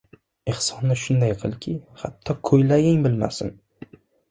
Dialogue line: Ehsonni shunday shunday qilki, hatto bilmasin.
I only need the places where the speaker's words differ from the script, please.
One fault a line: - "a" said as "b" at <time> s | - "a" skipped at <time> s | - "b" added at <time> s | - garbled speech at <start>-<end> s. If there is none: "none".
- "shunday" skipped at 1.4 s
- "ko‘ylaging" added at 2.5 s